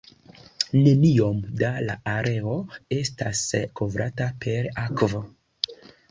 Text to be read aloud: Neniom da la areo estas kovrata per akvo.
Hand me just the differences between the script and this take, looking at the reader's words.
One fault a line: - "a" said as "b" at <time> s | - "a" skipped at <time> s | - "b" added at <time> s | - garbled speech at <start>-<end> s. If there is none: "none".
none